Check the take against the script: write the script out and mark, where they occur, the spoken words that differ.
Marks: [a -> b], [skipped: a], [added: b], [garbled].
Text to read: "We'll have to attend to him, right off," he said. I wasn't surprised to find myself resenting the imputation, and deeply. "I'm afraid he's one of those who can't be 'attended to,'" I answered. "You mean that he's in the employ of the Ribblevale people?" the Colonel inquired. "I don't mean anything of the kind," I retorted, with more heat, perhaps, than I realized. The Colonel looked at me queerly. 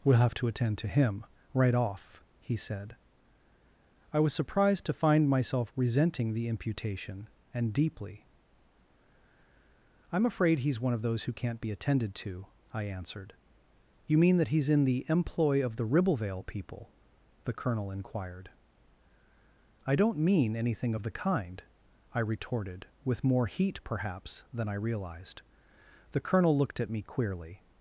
"We'll have to attend to him, right off," he said. I [wasn't -> was] surprised to find myself resenting the imputation, and deeply. "I'm afraid he's one of those who can't be 'attended to,'" I answered. "You mean that he's in the employ of the Ribblevale people?" the Colonel inquired. "I don't mean anything of the kind," I retorted, with more heat, perhaps, than I realized. The Colonel looked at me queerly.